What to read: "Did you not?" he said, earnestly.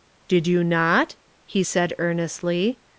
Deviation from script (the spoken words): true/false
false